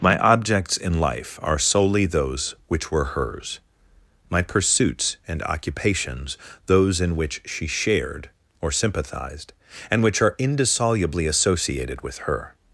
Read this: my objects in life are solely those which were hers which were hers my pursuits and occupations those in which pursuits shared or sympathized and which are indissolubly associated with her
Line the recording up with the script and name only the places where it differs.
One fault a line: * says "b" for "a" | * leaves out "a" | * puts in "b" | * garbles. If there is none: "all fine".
* leaves out "which were hers"
* says "she" for "pursuits"